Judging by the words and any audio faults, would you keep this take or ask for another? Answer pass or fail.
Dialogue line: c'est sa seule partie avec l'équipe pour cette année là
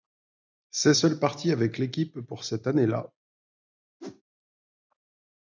fail